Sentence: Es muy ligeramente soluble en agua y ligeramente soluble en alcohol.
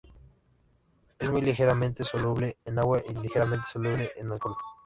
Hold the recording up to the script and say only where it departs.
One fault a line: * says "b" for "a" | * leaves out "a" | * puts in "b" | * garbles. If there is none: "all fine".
all fine